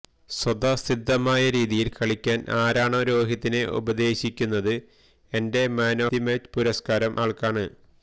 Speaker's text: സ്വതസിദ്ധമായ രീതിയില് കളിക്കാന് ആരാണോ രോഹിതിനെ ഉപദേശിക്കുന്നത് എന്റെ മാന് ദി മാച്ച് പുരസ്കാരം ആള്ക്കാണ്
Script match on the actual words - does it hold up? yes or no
yes